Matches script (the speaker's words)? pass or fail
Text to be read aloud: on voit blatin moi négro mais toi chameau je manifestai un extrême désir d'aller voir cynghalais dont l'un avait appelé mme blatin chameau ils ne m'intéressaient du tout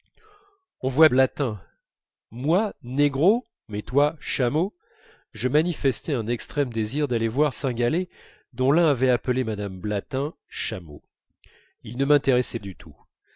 pass